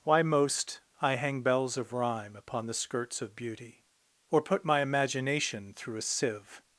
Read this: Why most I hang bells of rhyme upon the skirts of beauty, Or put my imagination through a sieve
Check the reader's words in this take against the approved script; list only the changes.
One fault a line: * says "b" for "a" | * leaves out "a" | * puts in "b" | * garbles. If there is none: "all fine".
all fine